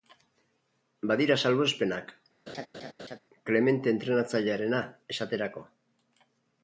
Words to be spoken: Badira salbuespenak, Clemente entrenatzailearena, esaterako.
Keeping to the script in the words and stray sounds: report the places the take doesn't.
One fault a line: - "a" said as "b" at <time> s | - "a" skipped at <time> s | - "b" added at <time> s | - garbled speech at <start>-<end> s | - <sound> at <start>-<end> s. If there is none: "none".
- laugh at 2.5-3.2 s